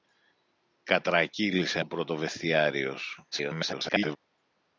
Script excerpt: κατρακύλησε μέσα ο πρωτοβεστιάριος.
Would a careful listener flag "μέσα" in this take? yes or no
yes